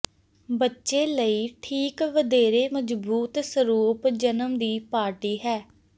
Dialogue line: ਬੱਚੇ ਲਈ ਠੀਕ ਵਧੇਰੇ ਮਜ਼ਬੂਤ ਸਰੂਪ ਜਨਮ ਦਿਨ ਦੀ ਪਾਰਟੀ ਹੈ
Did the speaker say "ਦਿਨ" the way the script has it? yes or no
no